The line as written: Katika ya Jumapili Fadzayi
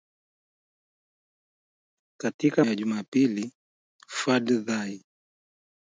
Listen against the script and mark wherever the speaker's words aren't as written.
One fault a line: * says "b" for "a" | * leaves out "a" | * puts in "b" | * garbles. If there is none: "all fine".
all fine